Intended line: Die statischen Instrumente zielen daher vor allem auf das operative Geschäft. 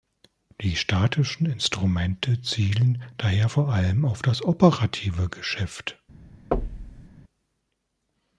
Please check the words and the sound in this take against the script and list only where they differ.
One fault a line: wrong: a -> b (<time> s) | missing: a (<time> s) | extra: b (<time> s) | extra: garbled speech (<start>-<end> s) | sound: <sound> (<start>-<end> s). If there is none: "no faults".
sound: thud (6.5-7.1 s)